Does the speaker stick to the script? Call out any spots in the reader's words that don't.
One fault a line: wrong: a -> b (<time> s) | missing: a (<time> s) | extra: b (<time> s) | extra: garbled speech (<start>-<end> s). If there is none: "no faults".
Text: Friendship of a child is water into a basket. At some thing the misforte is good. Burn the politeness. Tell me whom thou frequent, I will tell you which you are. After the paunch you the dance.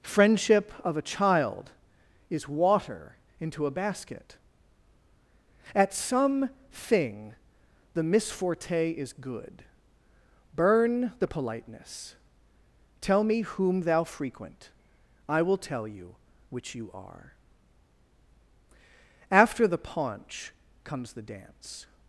wrong: you -> comes (20.8 s)